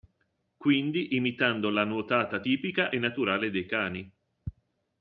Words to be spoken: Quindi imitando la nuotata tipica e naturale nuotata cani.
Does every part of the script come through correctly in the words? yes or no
no